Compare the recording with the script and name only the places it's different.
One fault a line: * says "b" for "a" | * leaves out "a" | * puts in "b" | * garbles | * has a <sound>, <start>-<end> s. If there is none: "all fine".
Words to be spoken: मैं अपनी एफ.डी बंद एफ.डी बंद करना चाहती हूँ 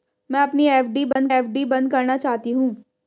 * has a dropout, 1.1-1.2 s